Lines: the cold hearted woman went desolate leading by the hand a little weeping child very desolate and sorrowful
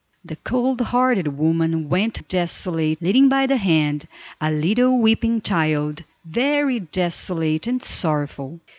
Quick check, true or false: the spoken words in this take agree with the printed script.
true